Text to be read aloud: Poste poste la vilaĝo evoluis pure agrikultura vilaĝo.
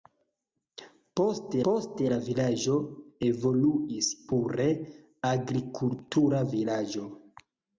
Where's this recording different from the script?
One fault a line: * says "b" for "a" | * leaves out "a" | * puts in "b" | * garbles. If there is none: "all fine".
all fine